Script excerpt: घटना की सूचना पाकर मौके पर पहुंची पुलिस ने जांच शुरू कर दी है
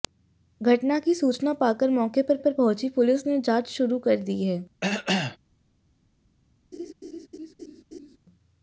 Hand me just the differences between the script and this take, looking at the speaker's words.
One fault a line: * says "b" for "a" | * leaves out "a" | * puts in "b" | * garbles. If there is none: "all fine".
* puts in "पर"